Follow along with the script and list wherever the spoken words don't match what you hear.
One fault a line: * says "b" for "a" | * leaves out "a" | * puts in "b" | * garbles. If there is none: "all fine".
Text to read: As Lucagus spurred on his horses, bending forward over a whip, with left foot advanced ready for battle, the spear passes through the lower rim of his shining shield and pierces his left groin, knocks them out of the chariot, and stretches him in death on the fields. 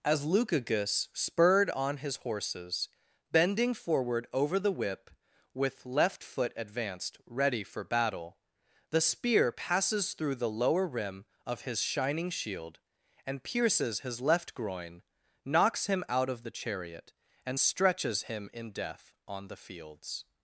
* says "the" for "a"
* says "him" for "them"